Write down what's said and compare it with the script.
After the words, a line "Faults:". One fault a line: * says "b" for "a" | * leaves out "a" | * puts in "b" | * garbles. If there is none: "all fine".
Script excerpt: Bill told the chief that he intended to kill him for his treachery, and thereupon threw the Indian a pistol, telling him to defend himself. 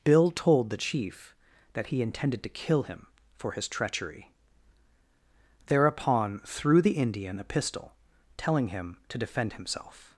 Bill told the chief that he intended to kill him for his treachery, thereupon threw the Indian a pistol, telling him to defend himself.
Faults:
* leaves out "and"